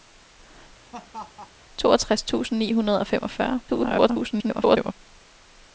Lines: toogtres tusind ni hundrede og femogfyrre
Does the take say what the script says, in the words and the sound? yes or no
no